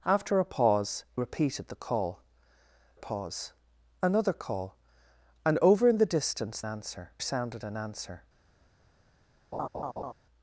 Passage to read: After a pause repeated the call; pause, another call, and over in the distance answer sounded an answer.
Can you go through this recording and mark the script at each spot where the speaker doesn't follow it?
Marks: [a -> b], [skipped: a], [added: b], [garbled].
After a pause repeated the call; pause, another call, and over in the distance answer sounded an answer.